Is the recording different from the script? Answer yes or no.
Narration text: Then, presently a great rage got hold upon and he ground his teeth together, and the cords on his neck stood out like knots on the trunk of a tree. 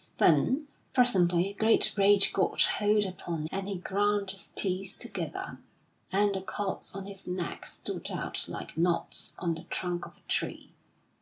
no